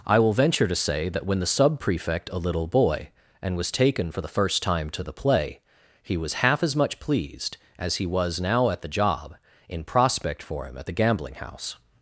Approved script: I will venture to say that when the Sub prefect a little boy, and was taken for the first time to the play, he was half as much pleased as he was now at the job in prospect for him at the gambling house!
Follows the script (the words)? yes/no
yes